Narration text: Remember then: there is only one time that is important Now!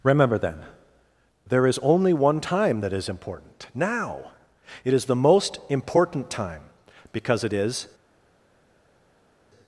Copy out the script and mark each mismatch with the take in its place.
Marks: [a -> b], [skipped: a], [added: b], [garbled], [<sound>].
Remember then: there is only one time that is important Now! [added: It is the most important time because it is]